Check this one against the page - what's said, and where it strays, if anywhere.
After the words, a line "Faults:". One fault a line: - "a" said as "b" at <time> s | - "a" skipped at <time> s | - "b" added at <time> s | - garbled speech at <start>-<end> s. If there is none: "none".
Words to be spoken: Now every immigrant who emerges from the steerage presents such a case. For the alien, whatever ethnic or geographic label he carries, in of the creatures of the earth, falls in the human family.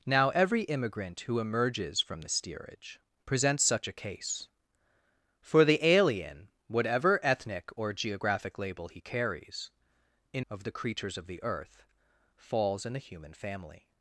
Now every immigrant who emerges from the steerage presents such a case. For the alien, whatever ethnic or geographic label he carries, in of the creatures of the earth, falls in the human family.
Faults:
none